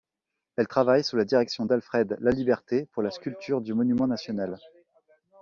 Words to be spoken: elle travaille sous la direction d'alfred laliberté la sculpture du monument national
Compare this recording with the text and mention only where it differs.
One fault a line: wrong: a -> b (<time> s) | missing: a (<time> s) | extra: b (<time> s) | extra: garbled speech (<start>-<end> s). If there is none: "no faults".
extra: pour (2.9 s)